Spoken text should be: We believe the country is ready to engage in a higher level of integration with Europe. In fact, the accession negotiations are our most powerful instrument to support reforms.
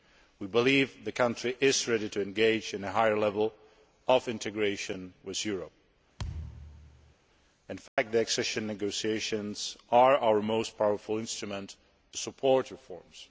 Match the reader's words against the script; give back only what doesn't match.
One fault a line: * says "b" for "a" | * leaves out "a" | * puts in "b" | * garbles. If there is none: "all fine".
all fine